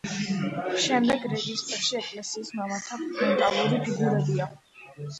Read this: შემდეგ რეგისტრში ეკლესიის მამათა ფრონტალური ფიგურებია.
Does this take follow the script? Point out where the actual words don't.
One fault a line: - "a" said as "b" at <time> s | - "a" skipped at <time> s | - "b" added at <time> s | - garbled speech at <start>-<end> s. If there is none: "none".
none